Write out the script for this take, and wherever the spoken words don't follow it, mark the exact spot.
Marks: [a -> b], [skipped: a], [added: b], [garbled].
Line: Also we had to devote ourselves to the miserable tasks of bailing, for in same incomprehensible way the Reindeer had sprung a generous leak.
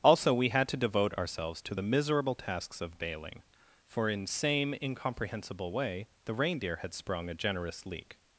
Also we had to devote ourselves to the miserable tasks of bailing, for in same incomprehensible way the Reindeer had sprung a generous leak.